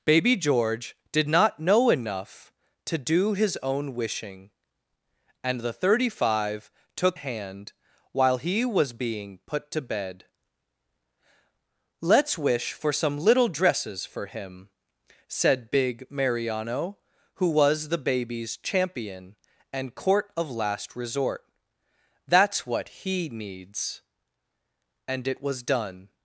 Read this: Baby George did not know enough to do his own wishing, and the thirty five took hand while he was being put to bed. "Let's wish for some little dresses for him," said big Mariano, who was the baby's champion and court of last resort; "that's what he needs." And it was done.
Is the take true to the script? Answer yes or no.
yes